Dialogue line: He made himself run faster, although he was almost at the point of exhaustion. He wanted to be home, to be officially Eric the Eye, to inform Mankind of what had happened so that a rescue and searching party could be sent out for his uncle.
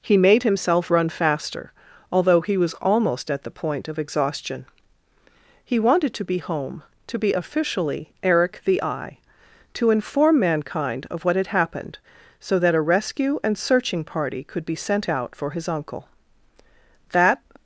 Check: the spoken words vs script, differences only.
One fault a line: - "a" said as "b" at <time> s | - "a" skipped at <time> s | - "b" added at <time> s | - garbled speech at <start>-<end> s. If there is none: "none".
- "That" added at 17.1 s